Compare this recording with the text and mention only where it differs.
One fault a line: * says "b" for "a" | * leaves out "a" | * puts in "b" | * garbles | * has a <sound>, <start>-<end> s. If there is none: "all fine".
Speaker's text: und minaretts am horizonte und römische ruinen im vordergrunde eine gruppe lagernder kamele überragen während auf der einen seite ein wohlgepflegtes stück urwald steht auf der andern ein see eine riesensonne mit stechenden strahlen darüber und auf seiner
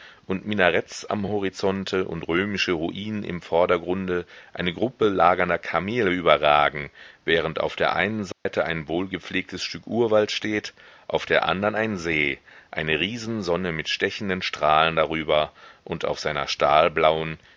* has a dropout, 8.3-8.5 s